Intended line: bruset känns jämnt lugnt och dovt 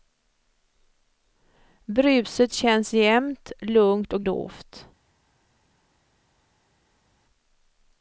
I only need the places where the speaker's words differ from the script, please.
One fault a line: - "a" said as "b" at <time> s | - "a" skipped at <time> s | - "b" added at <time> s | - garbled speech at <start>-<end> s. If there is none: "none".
none